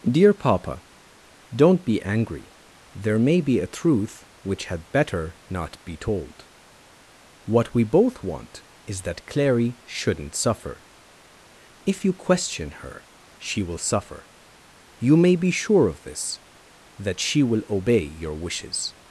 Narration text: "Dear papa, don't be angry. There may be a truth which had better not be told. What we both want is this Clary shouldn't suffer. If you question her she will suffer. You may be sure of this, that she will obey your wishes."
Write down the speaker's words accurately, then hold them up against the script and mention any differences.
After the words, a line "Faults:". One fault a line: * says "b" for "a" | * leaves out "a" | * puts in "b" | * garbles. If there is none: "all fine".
"Dear papa, don't be angry. There may be a truth which had better not be told. What we both want is that Clary shouldn't suffer. If you question her she will suffer. You may be sure of this, that she will obey your wishes."
Faults:
* says "that" for "this"